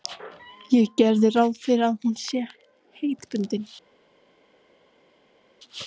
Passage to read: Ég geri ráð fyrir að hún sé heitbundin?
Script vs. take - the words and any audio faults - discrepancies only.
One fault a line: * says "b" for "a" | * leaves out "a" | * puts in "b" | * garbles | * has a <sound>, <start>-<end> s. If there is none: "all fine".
all fine